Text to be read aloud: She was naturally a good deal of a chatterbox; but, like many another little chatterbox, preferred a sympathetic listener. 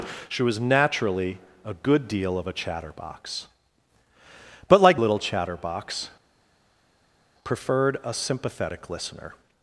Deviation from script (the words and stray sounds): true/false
true